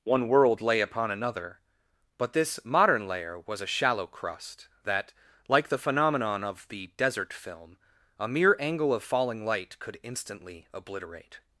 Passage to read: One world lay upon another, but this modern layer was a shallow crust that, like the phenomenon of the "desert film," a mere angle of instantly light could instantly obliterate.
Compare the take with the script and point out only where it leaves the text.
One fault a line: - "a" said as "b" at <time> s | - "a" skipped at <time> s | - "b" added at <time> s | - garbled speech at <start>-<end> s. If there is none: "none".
- "instantly" said as "falling" at 9.0 s